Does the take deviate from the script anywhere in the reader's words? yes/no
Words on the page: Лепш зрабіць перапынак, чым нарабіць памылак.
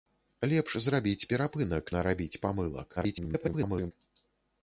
yes